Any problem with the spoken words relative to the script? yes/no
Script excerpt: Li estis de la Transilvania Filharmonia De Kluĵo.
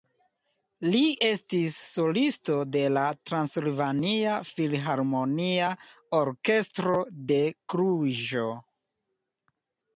yes